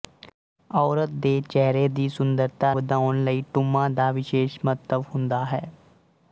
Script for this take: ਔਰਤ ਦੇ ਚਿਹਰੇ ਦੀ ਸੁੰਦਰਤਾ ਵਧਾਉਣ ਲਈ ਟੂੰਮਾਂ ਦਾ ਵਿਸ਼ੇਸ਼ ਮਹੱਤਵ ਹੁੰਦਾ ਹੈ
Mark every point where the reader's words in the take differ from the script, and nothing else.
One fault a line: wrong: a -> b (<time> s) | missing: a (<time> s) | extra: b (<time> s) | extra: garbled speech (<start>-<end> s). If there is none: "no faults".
no faults